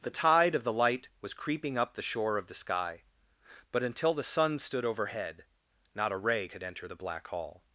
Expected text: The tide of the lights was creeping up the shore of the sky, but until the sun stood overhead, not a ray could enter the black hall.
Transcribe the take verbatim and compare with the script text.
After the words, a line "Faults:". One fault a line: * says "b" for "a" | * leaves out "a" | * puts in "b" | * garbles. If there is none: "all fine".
The tide of the light was creeping up the shore of the sky, but until the sun stood overhead, not a ray could enter the black hall.
Faults:
* says "light" for "lights"